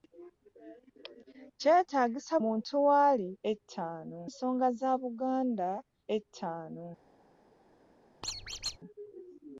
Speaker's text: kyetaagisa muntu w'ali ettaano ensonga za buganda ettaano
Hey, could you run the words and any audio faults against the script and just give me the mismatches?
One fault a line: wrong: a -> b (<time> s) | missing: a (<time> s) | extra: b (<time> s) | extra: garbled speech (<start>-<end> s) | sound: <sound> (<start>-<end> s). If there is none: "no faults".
sound: squeak (8.2-8.8 s)